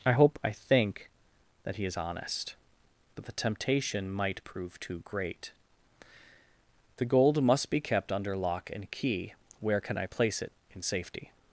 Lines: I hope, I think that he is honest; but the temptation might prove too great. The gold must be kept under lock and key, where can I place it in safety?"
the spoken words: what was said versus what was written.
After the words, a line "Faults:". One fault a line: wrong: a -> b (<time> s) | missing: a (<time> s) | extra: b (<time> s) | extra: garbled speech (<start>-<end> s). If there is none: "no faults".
I hope, I think that he is honest; but the temptation might prove too great. The gold must be kept under lock and key, where can I place it in safety?"
Faults:
no faults